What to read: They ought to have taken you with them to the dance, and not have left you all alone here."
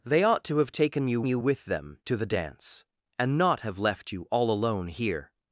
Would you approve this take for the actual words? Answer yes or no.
no